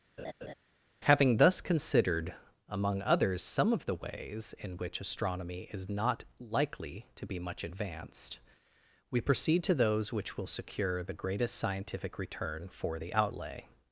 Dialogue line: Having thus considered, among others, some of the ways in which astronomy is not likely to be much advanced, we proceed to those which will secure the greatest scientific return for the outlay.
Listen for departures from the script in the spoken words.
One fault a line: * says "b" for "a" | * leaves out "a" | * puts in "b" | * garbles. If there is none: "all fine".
all fine